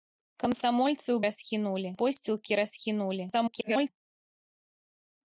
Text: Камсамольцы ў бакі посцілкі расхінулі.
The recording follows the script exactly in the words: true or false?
false